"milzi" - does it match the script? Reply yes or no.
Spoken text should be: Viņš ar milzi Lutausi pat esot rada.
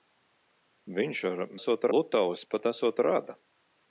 no